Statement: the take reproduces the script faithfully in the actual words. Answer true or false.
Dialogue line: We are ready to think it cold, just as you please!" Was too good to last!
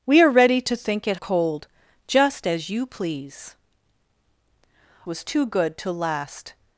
true